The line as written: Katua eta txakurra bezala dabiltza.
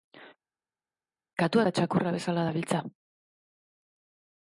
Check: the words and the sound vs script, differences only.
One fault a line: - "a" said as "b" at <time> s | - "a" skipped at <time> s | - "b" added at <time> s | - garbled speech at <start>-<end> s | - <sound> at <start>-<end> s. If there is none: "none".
none